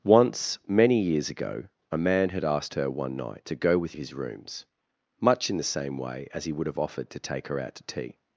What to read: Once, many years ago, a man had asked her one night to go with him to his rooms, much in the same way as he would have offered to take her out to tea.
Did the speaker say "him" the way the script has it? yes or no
no